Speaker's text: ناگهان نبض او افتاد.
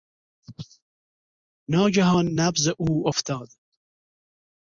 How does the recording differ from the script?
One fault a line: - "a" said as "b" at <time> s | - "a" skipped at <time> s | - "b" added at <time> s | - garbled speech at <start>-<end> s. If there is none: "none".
none